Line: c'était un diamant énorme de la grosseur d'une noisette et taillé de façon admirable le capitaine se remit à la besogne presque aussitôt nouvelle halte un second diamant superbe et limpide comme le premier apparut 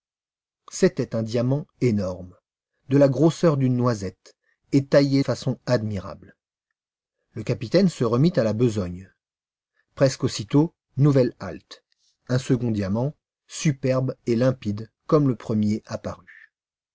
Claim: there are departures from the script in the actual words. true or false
true